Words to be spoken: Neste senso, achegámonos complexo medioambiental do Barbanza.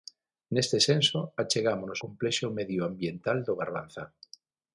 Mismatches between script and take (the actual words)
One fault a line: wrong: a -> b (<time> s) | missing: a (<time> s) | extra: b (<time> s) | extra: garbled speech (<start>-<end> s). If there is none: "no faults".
no faults